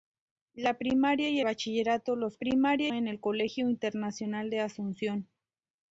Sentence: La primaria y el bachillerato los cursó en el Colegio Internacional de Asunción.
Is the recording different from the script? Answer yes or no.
yes